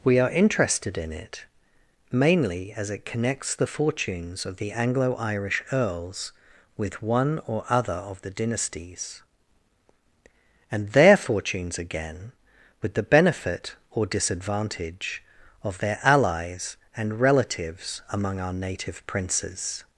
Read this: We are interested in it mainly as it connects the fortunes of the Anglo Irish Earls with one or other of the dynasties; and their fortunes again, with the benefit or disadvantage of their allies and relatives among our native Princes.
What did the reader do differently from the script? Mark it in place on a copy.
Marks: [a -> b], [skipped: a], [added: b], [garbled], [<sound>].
We are interested in it mainly as it connects the fortunes of the Anglo Irish Earls with one or other of the dynasties; and their fortunes again, with the benefit or disadvantage of their allies and relatives among our native Princes.